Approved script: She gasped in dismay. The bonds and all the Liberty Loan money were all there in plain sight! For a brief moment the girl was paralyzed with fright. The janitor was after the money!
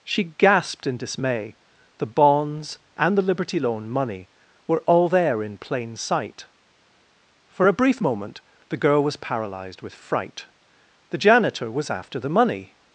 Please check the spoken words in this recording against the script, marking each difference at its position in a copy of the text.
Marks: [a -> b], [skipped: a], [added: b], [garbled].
She gasped in dismay. The bonds and [skipped: all] the Liberty Loan money were all there in plain sight! For a brief moment the girl was paralyzed with fright. The janitor was after the money!